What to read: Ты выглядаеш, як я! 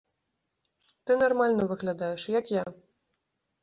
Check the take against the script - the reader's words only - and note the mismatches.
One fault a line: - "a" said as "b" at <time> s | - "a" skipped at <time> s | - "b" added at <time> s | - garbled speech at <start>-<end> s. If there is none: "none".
- "нармальна" added at 1.2 s